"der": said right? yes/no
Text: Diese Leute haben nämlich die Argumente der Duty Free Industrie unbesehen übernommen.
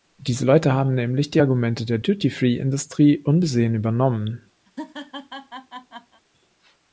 yes